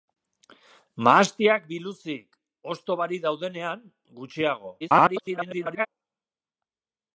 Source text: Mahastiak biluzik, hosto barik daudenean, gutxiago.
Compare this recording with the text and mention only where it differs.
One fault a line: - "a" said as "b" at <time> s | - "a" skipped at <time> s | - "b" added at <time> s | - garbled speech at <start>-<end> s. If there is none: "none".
- garbled speech at 4.8-5.9 s